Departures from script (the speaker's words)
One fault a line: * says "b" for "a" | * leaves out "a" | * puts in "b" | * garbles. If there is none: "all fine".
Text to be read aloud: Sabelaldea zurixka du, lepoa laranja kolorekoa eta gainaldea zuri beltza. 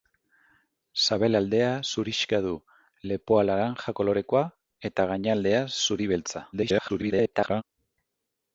* garbles